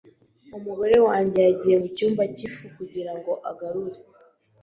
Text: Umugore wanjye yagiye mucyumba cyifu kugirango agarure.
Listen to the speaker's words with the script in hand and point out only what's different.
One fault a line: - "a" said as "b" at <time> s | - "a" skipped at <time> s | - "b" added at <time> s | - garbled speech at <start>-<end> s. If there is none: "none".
none